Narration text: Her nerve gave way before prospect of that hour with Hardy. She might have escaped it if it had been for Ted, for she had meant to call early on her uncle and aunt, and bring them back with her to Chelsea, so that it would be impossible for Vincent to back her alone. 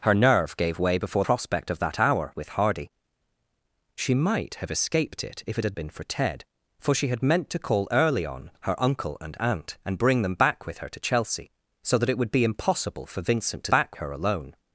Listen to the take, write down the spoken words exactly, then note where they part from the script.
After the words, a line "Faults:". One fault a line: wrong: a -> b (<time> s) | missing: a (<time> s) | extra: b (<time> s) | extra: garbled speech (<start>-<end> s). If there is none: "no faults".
Her nerve gave way before prospect of that hour with Hardy. She might have escaped it if it had been for Ted, for she had meant to call early on her uncle and aunt, and bring them back with her to Chelsea, so that it would be impossible for Vincent to back her alone.
Faults:
no faults